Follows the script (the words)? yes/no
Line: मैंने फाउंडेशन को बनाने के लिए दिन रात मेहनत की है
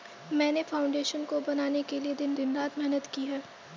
no